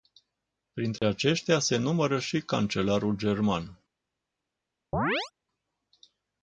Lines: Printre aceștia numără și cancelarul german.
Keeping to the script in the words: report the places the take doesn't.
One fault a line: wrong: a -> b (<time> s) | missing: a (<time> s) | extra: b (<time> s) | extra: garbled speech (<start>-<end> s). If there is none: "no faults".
extra: se (1.6 s)